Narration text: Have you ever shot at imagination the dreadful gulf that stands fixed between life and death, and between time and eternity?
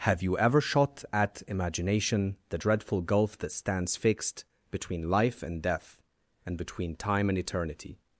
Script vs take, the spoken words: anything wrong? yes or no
no